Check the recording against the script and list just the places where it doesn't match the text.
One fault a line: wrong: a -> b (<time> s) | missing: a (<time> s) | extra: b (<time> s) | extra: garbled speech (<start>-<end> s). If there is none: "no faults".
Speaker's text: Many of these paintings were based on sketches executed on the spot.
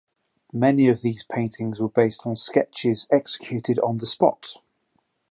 no faults